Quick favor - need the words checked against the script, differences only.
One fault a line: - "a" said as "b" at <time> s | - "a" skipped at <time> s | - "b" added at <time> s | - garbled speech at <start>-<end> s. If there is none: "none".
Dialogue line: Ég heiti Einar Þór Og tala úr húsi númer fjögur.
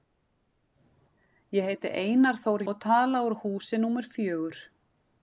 none